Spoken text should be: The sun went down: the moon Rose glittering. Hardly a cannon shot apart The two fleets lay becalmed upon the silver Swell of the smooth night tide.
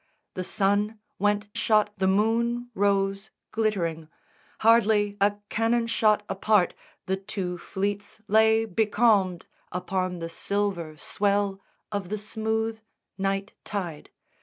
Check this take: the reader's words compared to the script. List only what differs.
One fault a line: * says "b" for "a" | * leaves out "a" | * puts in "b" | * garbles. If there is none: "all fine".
* says "shot" for "down"